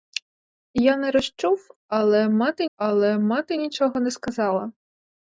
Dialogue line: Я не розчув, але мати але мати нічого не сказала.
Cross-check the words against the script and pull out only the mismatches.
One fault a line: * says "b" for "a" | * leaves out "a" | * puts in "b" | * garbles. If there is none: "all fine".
all fine